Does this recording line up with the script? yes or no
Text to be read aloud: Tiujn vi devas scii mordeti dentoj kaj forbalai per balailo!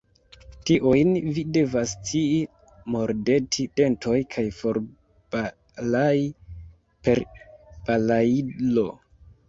yes